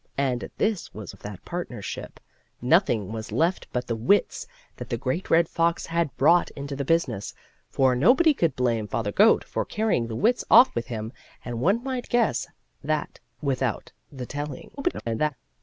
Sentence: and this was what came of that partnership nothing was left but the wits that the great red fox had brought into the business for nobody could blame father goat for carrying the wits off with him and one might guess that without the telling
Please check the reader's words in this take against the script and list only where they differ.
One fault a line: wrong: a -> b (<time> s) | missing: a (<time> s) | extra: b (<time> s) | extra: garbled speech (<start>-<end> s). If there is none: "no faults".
missing: what came (1.1 s)
extra: garbled speech (14.8-15.3 s)